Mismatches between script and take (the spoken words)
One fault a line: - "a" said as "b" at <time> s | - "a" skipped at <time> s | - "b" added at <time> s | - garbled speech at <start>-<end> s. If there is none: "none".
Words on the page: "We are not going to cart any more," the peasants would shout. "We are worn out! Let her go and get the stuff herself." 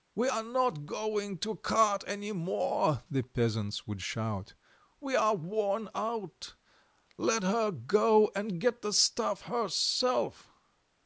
none